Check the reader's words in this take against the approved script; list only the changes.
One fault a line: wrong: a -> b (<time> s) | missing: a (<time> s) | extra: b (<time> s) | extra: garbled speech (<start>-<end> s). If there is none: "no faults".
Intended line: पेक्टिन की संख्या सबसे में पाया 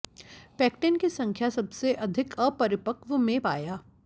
extra: अधिक अपरिपक्व (2.0 s)